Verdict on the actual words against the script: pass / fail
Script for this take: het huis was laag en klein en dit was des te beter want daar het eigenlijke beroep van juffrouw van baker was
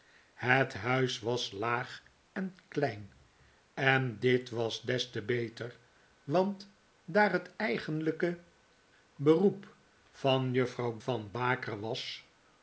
pass